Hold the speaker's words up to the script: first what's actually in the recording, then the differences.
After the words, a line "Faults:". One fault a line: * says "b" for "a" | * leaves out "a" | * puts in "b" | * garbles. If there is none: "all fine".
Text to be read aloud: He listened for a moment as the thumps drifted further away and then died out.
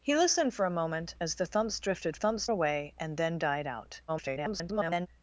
He listened for a moment as the thumps drifted thumps away and then died out. [garbled]
Faults:
* says "thumps" for "further"
* garbles